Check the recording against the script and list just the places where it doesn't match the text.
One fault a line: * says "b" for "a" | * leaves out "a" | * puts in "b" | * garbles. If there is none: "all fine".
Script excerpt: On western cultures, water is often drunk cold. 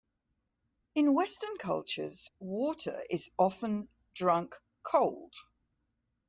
* says "In" for "On"